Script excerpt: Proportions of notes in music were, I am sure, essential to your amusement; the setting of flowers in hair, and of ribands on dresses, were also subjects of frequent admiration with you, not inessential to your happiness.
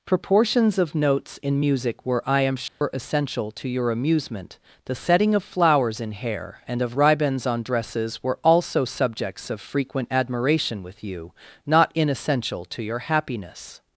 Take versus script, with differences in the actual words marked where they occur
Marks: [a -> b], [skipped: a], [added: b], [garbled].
Proportions of notes in music were, I am sure, essential to your amusement; the setting of flowers in hair, and of ribands on dresses, were also subjects of frequent admiration with you, not inessential to your happiness.